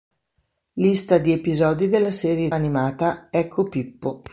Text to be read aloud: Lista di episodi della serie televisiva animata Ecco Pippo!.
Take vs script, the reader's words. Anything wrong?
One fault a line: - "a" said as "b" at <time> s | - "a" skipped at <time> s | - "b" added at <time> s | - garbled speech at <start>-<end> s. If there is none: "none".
- "televisiva" skipped at 2.5 s